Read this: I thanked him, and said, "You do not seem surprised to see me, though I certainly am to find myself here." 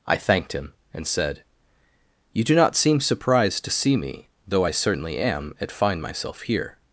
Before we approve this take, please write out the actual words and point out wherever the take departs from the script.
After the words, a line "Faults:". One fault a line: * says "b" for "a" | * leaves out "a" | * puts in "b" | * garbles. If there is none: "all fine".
I thanked him, and said, "You do not seem surprised to see me, though I certainly am at find myself here."
Faults:
* says "at" for "to"